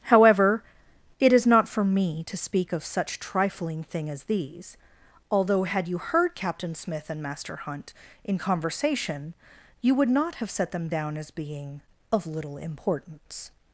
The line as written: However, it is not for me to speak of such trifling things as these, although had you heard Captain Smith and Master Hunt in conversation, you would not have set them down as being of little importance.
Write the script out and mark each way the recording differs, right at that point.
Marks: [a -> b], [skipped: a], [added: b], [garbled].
However, it is not for me to speak of such trifling [things -> thing] as these, although had you heard Captain Smith and Master Hunt in conversation, you would not have set them down as being of little importance.